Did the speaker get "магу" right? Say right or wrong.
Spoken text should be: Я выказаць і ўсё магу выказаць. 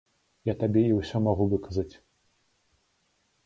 right